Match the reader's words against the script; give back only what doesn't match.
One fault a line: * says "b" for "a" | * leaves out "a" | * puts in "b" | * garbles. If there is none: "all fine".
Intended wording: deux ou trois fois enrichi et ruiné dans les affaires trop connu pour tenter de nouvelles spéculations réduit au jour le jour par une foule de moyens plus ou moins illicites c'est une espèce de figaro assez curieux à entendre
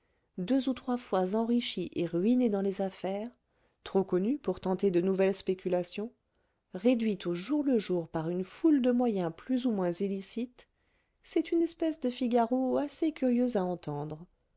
all fine